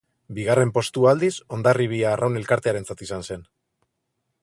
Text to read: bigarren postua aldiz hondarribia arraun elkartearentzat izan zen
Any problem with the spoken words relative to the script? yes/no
no